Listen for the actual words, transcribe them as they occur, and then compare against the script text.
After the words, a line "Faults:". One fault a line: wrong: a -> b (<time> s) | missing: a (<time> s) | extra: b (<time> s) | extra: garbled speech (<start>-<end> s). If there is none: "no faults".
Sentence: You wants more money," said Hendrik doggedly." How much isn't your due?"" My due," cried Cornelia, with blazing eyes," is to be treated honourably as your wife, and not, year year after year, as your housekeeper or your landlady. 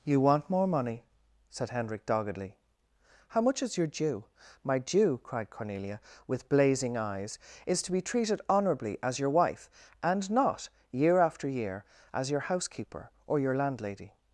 You want more money," said Hendrik doggedly." How much is your due?"" My due," cried Cornelia, with blazing eyes," is to be treated honourably as your wife, and not, year after year, as your housekeeper or your landlady.
Faults:
wrong: wants -> want (0.2 s)
wrong: isn't -> is (3.6 s)
missing: year (11.2 s)